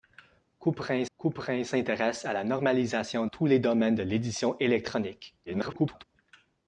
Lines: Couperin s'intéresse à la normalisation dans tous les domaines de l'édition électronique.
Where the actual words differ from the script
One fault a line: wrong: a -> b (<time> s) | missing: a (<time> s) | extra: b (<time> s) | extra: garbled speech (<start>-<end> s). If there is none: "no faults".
extra: couperin (1.2 s)
missing: dans (3.3 s)
extra: garbled speech (5.5-6.0 s)